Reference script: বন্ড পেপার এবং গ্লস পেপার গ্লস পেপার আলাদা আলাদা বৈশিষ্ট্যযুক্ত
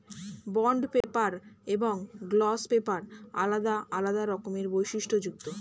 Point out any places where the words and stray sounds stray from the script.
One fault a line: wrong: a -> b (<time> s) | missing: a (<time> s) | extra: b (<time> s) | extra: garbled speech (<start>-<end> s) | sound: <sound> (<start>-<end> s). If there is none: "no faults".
sound: dropout (1.0-1.0 s)
wrong: গ্লস পেপার -> আলাদা (3.3 s)
wrong: আলাদা -> রকমের (4.2 s)